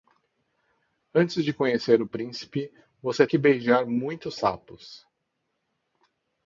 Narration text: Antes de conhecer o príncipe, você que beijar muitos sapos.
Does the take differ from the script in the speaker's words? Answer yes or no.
no